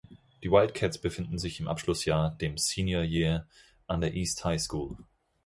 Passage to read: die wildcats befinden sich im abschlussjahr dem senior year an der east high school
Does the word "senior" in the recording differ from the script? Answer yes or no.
no